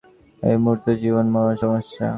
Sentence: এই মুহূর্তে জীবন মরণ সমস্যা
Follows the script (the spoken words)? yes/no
yes